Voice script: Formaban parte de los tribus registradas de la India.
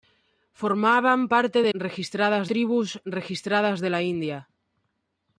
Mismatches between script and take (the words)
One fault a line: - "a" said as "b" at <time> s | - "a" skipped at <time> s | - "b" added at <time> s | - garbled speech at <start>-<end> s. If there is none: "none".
- "los" said as "registradas" at 1.7 s